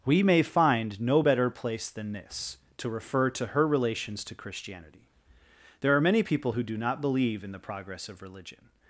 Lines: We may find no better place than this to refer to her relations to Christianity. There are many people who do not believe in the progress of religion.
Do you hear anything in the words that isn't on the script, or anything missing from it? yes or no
no